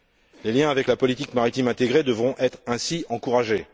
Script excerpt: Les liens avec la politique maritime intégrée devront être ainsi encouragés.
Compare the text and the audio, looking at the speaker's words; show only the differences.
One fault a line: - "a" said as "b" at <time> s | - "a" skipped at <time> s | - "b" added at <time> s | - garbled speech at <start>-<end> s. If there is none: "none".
none